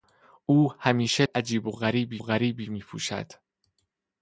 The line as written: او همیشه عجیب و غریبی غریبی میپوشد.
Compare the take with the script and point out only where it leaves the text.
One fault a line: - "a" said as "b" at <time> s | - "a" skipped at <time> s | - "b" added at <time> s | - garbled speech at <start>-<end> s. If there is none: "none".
none